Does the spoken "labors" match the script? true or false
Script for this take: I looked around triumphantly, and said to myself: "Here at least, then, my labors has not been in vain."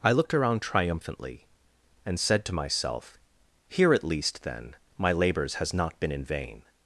true